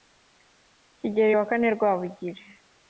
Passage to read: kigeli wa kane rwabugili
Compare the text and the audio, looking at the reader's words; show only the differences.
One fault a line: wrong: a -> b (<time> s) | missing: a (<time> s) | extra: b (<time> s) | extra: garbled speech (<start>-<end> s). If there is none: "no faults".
no faults